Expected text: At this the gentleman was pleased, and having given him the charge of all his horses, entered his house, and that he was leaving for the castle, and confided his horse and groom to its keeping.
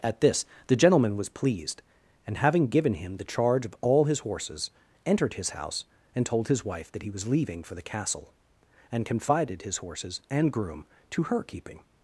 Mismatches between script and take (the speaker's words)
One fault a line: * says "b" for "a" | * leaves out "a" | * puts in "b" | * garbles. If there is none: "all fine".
* puts in "told his wife"
* says "horses" for "horse"
* says "her" for "its"